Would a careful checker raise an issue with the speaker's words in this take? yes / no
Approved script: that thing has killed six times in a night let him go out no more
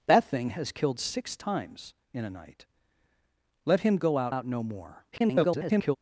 yes